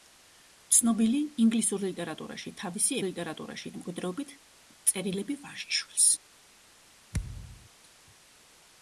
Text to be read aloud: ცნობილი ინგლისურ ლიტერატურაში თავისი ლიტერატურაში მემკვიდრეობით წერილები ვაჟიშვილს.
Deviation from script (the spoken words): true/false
false